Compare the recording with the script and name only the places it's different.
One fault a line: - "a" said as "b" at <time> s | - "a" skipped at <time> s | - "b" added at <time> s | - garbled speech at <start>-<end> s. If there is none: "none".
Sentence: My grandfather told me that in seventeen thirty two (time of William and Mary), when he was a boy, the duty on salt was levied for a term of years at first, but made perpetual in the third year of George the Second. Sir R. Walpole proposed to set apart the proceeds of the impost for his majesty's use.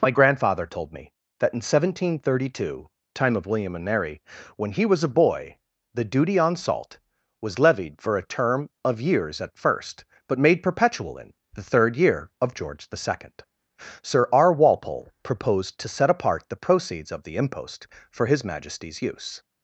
none